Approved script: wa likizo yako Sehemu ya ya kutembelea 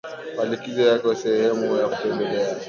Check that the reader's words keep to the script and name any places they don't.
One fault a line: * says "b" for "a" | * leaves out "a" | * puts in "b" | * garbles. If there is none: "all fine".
all fine